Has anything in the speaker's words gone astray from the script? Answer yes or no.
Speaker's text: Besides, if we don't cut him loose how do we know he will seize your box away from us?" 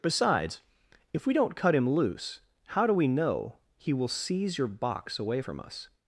no